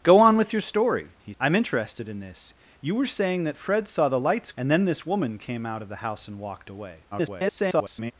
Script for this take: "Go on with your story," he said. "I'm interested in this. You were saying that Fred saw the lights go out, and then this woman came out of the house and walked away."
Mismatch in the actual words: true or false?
true